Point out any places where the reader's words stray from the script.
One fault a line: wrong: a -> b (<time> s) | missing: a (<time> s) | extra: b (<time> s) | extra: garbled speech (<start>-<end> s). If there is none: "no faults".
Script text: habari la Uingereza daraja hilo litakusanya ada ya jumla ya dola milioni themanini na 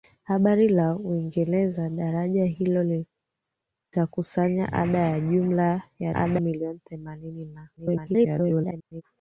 wrong: dola -> ada (6.1 s)
extra: garbled speech (7.8-9.0 s)